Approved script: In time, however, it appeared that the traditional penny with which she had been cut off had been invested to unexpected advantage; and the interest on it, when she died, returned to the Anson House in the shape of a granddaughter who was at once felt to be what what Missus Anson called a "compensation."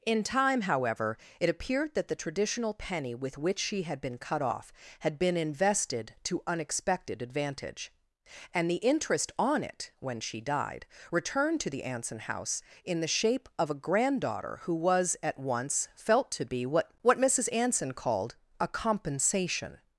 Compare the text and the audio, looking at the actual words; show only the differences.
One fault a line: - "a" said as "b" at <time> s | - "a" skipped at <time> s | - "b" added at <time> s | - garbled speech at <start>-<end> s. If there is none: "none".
none